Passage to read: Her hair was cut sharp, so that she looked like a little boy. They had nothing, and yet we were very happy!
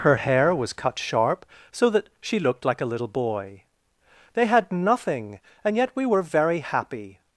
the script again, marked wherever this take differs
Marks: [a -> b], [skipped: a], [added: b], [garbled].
Her hair was cut sharp, so that she looked like a little boy. They had nothing, and yet we were very happy!